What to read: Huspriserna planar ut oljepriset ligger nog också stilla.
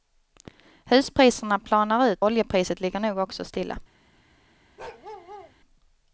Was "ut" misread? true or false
false